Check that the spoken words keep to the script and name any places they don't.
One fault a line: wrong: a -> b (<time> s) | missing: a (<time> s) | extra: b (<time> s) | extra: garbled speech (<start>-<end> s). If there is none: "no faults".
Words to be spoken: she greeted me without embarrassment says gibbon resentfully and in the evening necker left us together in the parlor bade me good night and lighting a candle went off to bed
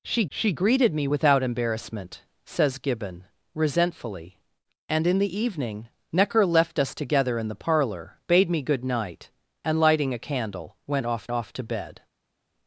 extra: she (0.3 s)
extra: off (11.3 s)